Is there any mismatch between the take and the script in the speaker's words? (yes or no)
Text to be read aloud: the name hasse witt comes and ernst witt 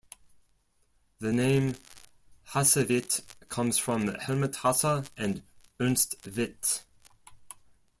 yes